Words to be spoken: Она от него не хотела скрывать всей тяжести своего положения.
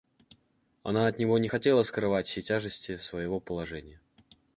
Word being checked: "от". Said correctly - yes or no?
yes